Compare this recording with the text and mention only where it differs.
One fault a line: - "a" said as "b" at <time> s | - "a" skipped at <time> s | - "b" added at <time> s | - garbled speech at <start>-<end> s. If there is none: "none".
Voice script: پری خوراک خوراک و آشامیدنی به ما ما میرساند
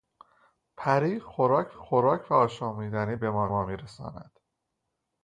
none